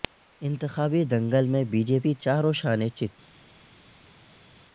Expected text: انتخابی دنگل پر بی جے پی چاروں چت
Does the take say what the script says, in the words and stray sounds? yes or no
no